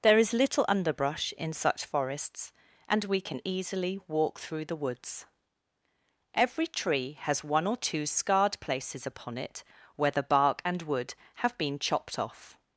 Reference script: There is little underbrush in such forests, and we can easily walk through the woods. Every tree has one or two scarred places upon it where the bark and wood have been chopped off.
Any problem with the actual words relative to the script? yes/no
no